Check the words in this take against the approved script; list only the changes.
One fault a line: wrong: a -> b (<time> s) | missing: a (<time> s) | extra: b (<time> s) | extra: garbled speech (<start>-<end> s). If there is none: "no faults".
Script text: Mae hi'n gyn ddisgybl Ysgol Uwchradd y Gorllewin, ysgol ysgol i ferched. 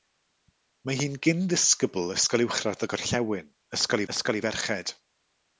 no faults